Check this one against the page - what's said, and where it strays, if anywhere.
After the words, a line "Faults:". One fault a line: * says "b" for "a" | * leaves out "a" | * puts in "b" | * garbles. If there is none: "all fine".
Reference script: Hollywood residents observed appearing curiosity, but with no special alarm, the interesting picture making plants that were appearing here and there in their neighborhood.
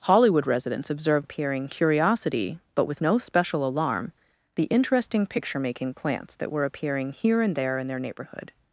Hollywood residents observed appearing curiosity, but with no special alarm, the interesting picture making plants that were appearing here and there in their neighborhood.
Faults:
all fine